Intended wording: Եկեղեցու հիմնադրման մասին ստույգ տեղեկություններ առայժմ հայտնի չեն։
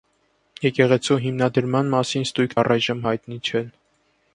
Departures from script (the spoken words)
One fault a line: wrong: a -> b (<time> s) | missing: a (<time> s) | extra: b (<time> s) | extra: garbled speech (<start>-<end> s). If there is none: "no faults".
missing: տեղեկություններ (2.6 s)